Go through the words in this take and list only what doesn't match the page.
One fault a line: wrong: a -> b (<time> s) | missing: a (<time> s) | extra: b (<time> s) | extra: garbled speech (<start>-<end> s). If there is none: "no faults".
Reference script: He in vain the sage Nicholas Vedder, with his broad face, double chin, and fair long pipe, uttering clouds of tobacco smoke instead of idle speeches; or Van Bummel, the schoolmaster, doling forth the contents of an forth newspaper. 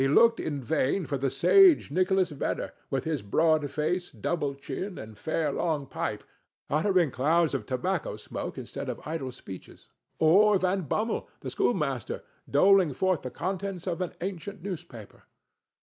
extra: looked (0.1 s)
extra: for (1.1 s)
wrong: forth -> ancient (14.2 s)